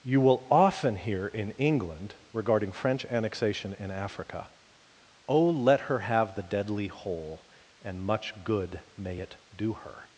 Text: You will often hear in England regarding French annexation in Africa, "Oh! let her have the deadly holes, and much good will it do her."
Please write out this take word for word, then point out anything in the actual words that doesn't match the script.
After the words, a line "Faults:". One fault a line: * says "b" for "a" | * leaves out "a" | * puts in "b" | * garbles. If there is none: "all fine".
You will often hear in England regarding French annexation in Africa, "Oh! let her have the deadly hole, and much good may it do her."
Faults:
* says "hole" for "holes"
* says "may" for "will"